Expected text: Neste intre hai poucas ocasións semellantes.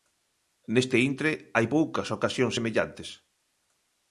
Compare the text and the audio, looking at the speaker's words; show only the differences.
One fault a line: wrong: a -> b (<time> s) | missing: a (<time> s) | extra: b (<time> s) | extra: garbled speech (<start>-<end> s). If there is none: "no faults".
no faults